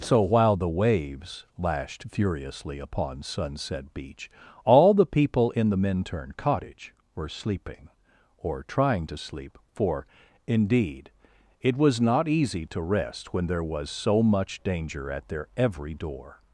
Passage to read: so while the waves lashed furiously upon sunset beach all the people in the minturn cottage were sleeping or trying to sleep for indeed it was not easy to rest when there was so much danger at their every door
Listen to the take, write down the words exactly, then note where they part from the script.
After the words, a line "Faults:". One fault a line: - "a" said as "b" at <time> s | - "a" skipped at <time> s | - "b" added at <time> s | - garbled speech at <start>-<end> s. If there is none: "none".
so while the waves lashed furiously upon sunset beach all the people in the minturn cottage were sleeping or trying to sleep for indeed it was not easy to rest when there was so much danger at their every door
Faults:
none